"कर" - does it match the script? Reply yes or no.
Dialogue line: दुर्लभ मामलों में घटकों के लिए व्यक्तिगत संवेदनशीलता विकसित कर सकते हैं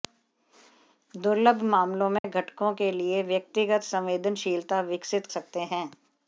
no